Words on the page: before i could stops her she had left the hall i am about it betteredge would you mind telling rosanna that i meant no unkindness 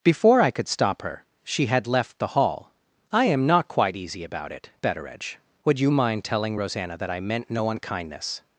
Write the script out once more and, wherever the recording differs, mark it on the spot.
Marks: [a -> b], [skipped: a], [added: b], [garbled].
before i could [stops -> stop] her she had left the hall i am [added: not quite easy] about it betteredge would you mind telling rosanna that i meant no unkindness